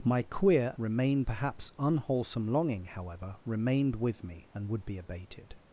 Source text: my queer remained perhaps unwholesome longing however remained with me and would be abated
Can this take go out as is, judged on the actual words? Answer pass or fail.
pass